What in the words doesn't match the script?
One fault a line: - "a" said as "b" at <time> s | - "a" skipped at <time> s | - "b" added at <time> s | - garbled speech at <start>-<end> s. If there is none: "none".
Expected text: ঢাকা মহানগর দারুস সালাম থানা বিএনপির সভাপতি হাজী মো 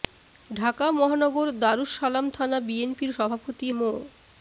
- "হাজী" skipped at 3.7 s